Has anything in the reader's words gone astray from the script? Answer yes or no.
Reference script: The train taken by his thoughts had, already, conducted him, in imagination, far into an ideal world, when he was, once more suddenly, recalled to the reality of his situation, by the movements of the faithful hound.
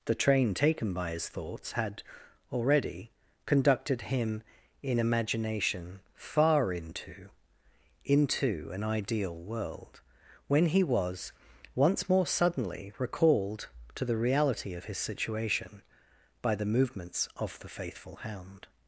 yes